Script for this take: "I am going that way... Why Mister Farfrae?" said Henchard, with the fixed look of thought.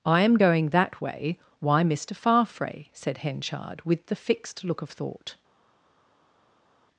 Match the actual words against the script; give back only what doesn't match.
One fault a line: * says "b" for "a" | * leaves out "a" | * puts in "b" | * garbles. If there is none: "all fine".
all fine